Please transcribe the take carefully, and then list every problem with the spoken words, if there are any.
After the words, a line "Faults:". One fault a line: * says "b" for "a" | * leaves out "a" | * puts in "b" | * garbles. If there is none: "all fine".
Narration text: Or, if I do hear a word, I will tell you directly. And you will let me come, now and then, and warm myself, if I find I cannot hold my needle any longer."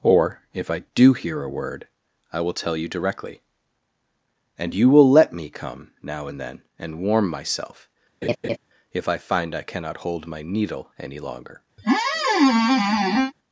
Or, if I do hear a word, I will tell you directly. And you will let me come, now and then, and warm myself, if I find I cannot hold my needle any longer."
Faults:
all fine